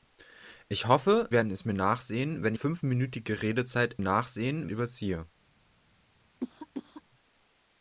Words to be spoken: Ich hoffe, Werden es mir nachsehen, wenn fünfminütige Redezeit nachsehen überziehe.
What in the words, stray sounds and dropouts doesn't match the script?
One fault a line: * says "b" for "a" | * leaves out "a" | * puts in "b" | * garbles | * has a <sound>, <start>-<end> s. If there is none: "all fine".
* has a cough, 6.4-7.0 s